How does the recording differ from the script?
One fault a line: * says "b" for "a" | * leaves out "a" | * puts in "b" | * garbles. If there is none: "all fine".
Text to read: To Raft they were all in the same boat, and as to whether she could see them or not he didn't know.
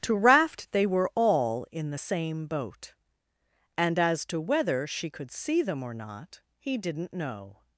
all fine